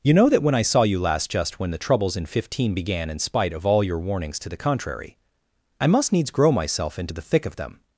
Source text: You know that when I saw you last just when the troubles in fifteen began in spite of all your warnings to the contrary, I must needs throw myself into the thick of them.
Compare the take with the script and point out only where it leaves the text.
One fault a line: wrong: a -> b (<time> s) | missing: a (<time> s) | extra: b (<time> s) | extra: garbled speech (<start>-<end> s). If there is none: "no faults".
wrong: throw -> grow (6.3 s)